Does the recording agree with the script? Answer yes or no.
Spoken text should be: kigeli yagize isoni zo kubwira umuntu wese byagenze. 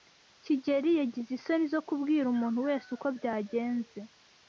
no